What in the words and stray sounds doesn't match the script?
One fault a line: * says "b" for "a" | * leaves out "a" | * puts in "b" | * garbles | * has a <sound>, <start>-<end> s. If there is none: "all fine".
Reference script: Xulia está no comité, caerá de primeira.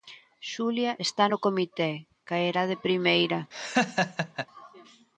* has a laugh, 3.5-4.5 s